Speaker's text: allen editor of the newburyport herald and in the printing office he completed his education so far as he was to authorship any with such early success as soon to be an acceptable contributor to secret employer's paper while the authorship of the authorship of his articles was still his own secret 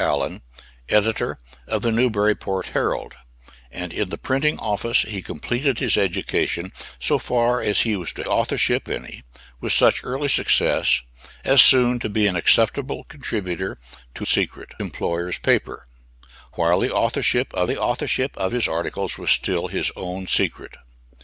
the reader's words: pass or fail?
pass